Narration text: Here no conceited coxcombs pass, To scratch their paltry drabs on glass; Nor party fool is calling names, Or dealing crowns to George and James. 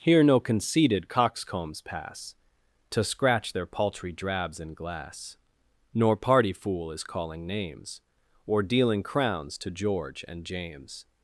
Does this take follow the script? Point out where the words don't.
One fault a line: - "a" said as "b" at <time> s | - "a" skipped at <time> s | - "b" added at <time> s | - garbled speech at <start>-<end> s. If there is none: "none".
- "on" said as "in" at 4.6 s